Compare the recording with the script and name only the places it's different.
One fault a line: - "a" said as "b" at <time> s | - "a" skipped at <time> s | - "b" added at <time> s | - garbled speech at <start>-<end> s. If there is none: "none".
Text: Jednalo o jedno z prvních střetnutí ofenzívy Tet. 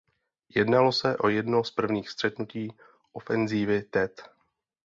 - "se" added at 0.9 s